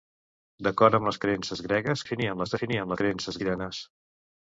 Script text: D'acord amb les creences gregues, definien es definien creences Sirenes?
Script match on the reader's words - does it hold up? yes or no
yes